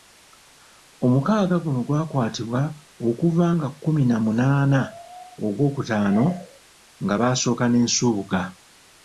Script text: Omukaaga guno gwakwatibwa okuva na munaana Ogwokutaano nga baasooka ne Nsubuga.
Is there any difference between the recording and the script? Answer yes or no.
yes